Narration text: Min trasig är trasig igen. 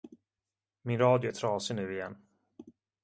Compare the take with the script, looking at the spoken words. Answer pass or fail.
fail